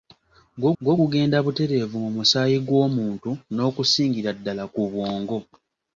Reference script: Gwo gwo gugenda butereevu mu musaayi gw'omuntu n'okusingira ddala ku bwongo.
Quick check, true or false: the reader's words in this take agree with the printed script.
true